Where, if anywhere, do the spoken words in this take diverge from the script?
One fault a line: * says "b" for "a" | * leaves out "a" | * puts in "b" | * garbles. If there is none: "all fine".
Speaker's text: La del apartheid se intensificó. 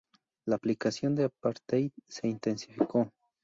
* puts in "aplicación"